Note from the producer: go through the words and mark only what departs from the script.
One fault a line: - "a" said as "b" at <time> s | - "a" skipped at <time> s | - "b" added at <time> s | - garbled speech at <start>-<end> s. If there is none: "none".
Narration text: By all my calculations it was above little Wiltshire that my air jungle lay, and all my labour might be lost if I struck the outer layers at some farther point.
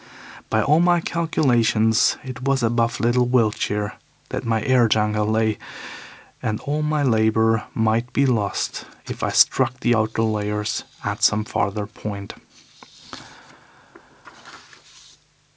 none